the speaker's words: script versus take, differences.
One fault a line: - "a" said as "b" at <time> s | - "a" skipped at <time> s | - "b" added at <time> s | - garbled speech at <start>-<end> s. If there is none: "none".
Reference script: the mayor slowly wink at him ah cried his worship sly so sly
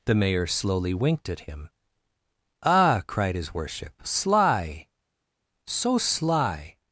- "wink" said as "winked" at 0.9 s